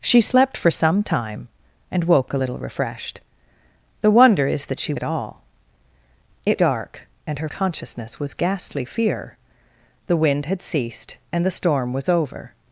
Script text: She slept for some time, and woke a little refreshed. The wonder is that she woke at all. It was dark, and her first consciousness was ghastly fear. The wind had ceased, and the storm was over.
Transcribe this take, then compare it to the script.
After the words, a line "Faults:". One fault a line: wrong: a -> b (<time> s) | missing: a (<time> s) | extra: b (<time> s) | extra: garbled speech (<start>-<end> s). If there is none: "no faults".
She slept for some time, and woke a little refreshed. The wonder is that she at all. It dark, and her consciousness was ghastly fear. The wind had ceased, and the storm was over.
Faults:
missing: woke (4.9 s)
missing: was (6.6 s)
missing: first (7.5 s)